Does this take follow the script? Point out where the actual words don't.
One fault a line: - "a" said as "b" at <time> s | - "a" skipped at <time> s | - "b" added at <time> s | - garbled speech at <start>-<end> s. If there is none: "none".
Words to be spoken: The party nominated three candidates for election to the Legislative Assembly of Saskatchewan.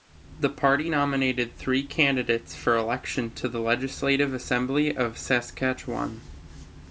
none